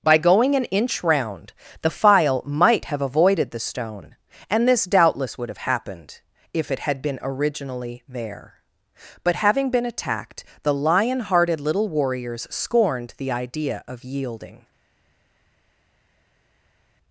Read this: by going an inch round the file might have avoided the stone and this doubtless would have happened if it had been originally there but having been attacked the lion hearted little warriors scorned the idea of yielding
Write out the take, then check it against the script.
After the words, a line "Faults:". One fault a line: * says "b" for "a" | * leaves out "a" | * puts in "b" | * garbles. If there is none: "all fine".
by going an inch round the file might have avoided the stone and this doubtless would have happened if it had been originally there but having been attacked the lion hearted little warriors scorned the idea of yielding
Faults:
all fine